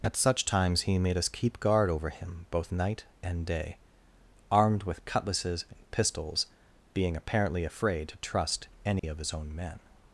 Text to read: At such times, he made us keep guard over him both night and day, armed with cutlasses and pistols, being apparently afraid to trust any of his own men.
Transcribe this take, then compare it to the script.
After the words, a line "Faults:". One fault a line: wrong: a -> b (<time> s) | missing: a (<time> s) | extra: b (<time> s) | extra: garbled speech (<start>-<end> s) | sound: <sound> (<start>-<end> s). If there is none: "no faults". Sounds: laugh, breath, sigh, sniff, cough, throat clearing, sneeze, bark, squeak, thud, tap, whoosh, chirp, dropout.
At such times, he made us keep guard over him both night and day, armed with cutlasses and pistols, being apparently afraid to trust any of his own men.
Faults:
sound: dropout (9.0-9.0 s)